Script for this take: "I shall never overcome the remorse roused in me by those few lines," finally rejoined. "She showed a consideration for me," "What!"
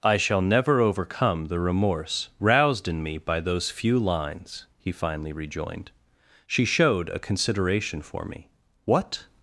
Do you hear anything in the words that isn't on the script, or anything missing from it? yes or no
yes